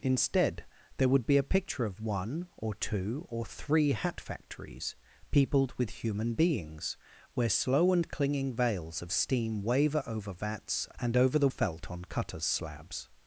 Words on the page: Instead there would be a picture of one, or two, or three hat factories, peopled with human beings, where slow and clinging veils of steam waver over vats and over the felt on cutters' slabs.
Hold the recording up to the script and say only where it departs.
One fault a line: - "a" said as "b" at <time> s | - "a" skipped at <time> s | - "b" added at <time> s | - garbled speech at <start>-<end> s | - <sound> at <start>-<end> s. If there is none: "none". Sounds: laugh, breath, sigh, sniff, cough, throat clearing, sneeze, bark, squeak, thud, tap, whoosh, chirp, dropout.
none